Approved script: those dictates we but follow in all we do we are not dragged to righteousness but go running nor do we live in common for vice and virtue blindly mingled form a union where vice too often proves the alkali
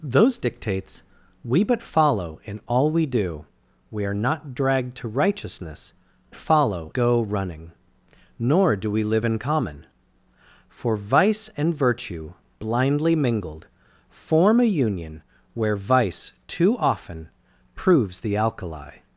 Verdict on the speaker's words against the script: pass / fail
fail